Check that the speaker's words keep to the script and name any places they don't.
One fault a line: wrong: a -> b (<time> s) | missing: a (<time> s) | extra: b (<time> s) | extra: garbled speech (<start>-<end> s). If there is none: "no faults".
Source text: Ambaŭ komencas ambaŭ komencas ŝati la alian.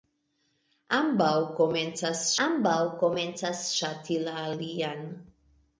no faults